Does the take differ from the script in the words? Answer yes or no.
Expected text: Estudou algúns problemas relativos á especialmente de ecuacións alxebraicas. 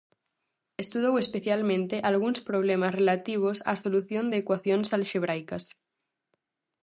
yes